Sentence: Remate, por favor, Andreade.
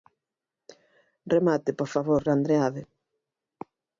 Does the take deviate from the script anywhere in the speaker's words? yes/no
no